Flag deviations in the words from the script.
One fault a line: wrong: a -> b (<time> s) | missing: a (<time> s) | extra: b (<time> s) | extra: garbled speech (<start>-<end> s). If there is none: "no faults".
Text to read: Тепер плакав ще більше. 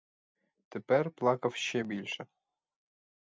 no faults